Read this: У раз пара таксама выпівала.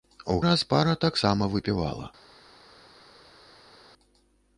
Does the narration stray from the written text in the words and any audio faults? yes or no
no